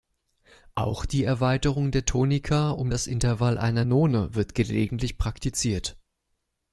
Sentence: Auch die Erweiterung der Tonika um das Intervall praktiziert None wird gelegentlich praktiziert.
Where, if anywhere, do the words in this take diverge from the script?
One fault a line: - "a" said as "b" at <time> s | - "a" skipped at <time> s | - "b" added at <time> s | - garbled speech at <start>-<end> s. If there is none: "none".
- "praktiziert" said as "einer" at 3.6 s